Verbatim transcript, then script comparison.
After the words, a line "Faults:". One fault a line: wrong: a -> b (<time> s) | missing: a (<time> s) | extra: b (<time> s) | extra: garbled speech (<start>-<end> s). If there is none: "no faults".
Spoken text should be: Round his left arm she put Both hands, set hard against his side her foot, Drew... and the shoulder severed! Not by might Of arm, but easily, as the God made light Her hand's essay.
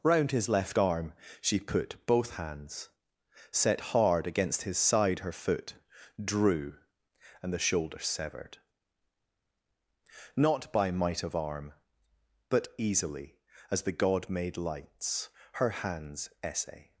Round his left arm she put Both hands, set hard against his side her foot, Drew... and the shoulder severed! Not by might Of arm, but easily, as the God made lights Her hand's essay.
Faults:
wrong: light -> lights (14.6 s)